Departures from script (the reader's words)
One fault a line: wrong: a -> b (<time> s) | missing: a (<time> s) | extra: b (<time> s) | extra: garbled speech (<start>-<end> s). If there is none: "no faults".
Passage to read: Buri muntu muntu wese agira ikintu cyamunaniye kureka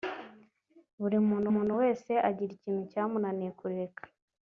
no faults